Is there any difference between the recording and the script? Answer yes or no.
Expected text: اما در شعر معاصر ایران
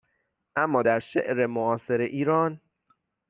no